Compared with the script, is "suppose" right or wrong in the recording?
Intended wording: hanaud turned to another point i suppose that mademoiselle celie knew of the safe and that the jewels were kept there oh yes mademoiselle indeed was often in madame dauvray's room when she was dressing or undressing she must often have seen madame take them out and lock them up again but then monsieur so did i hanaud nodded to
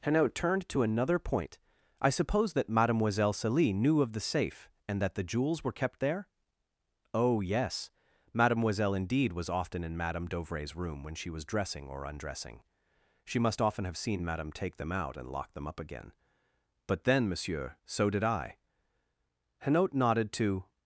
right